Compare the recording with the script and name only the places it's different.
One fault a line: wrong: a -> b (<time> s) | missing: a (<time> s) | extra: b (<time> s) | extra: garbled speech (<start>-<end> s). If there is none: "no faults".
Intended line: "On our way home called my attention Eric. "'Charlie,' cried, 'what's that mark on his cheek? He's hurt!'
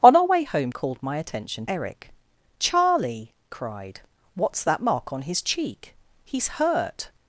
no faults